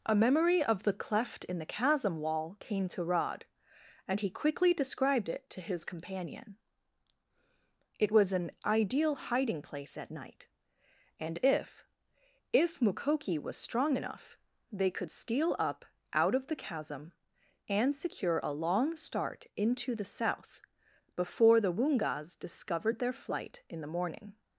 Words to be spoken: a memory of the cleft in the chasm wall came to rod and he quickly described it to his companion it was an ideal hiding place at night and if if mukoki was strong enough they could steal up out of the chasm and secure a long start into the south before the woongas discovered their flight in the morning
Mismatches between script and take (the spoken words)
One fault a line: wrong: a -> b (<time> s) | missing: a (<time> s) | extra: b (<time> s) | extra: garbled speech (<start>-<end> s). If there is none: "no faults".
no faults